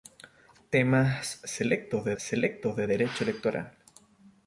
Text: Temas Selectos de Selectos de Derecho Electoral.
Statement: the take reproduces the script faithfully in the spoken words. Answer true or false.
true